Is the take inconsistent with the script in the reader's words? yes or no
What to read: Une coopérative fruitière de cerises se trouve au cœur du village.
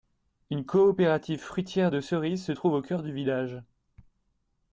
no